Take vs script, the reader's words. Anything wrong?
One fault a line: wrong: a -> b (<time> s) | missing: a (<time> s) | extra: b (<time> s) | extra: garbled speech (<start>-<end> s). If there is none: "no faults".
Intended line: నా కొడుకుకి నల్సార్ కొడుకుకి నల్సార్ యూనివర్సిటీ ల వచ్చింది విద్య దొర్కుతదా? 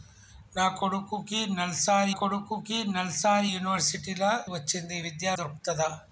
no faults